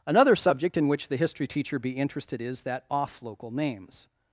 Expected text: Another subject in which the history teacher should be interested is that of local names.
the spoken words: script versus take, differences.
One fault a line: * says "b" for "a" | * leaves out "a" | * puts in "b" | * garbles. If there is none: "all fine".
* leaves out "should"
* says "off" for "of"